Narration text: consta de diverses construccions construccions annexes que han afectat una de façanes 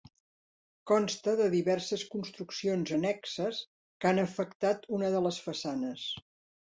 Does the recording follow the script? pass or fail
fail